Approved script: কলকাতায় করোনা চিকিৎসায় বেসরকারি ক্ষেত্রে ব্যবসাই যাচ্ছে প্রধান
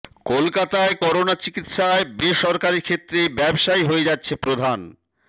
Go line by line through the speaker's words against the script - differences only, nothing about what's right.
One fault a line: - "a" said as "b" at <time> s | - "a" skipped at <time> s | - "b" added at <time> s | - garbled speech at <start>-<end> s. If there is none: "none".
- "হয়ে" added at 3.8 s